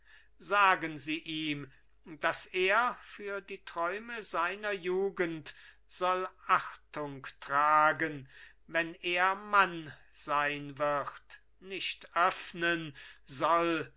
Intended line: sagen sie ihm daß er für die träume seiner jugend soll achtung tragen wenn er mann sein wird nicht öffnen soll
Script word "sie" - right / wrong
right